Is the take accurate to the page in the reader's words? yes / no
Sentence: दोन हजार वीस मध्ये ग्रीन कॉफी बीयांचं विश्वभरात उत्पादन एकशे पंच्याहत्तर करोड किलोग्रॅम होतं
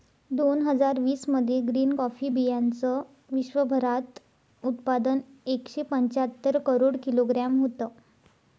yes